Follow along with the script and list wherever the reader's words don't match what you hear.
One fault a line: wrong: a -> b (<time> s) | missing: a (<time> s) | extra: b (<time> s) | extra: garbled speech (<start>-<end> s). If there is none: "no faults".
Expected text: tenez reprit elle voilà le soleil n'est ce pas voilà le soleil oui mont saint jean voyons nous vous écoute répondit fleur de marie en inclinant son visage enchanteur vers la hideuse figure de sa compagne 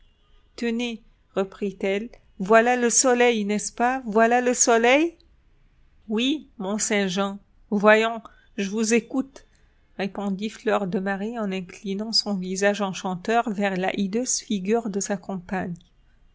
wrong: nous -> je (8.6 s)